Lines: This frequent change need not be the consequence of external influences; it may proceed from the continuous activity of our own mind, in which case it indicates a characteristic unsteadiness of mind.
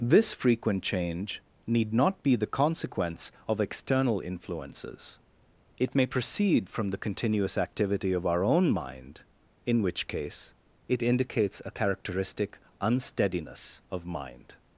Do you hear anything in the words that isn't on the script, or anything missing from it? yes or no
no